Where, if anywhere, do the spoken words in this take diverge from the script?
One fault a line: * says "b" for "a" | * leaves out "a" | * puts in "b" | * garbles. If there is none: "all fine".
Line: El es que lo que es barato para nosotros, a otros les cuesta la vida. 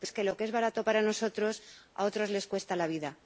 all fine